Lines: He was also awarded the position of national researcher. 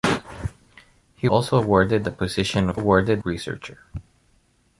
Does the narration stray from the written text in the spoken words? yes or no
yes